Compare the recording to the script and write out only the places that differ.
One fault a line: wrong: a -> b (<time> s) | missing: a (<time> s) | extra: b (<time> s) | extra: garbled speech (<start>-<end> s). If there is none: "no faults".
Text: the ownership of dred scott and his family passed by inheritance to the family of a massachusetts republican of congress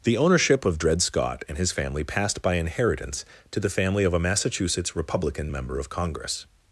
extra: member (5.5 s)